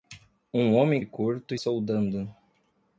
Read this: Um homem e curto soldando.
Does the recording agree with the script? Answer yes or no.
yes